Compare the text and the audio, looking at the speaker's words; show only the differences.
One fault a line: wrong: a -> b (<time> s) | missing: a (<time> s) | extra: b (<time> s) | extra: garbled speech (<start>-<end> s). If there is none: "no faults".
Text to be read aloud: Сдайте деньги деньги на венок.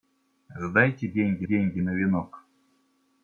no faults